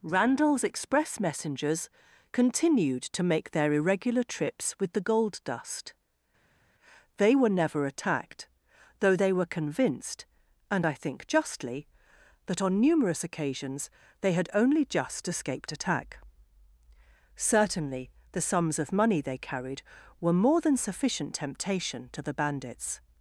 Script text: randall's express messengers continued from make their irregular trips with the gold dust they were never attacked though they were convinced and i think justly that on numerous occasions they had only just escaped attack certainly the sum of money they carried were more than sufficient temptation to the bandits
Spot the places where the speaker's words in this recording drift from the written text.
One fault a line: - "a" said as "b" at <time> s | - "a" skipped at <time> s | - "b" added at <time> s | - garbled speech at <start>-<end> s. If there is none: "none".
- "from" said as "to" at 3.0 s
- "sum" said as "sums" at 18.4 s